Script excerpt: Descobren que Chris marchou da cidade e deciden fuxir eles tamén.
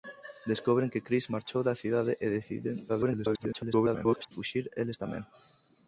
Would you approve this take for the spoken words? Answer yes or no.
no